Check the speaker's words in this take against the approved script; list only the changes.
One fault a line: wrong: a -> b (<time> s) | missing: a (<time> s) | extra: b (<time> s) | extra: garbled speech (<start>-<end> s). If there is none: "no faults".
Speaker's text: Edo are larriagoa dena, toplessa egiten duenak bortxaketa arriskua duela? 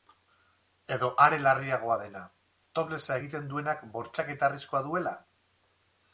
no faults